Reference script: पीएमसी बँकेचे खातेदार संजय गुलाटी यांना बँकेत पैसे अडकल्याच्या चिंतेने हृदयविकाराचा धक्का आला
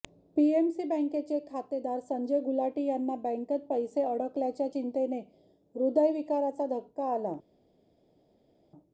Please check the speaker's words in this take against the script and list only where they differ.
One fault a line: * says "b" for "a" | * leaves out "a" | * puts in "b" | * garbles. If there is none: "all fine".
all fine